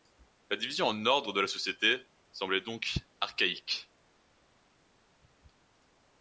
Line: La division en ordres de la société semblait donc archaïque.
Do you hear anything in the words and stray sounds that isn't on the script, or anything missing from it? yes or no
no